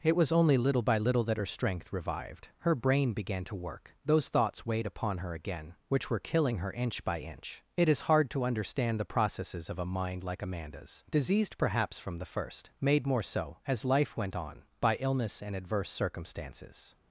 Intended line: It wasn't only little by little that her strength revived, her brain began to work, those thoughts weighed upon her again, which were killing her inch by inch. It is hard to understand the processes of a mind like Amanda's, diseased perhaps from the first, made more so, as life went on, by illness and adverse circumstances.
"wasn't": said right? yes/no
no